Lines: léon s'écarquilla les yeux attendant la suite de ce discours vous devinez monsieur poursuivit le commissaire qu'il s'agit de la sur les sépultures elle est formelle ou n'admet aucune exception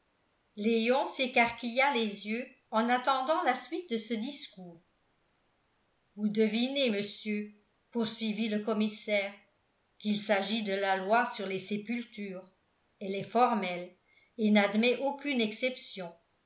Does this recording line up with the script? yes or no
no